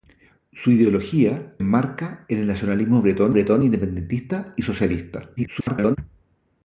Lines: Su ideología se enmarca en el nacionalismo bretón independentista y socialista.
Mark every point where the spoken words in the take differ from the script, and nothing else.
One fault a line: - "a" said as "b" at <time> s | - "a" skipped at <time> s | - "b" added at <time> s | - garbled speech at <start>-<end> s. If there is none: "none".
- "se" skipped at 1.5 s
- "bretón" added at 3.3 s
- garbled speech at 5.4-6.0 s